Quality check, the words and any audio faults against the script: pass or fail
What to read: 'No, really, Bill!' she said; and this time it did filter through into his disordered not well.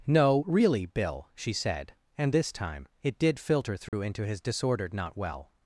fail